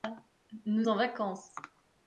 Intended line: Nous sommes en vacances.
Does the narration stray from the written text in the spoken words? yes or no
yes